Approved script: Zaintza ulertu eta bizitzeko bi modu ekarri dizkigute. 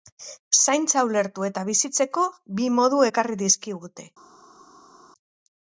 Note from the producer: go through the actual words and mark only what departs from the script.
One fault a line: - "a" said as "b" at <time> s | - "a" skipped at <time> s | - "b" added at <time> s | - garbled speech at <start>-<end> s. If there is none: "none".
none